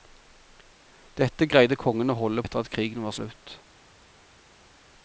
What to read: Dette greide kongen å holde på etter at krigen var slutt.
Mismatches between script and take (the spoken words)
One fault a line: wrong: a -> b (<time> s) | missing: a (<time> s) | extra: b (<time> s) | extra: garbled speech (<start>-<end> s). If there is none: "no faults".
missing: på (2.4 s)